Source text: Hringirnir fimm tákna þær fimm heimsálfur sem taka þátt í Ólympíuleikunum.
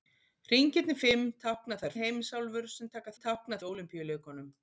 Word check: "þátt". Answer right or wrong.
wrong